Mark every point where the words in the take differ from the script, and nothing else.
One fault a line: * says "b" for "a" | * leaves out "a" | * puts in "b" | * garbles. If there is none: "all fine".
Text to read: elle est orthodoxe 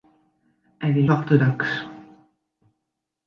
all fine